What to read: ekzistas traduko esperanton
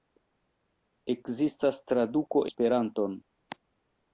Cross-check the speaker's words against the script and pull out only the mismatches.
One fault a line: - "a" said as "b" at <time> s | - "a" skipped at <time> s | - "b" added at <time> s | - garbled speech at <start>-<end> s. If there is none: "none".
none